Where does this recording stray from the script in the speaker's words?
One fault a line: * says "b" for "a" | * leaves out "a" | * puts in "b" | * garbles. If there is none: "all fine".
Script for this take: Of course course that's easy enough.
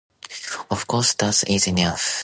* leaves out "course"